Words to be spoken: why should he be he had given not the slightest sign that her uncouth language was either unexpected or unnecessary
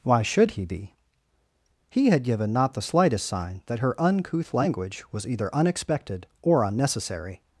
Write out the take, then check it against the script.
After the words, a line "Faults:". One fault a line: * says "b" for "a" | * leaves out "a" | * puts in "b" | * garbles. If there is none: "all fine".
why should he be he had given not the slightest sign that her uncouth language was either unexpected or unnecessary
Faults:
all fine